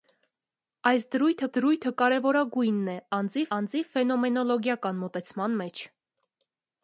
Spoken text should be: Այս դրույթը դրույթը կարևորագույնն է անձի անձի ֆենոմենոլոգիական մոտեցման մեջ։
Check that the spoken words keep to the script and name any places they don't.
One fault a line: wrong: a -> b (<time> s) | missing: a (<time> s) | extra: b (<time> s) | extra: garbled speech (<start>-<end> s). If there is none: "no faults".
no faults